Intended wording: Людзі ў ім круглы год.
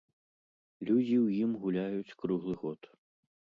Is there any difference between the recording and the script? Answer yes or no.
yes